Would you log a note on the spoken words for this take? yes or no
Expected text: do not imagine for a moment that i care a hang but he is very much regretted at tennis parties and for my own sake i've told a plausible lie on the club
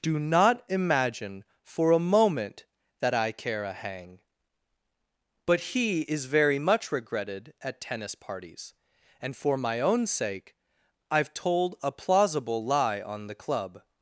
no